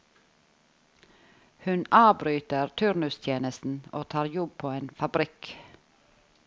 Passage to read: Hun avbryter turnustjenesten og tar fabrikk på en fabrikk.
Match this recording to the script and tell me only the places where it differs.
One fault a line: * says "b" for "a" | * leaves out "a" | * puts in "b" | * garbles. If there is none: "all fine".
* says "jobb" for "fabrikk"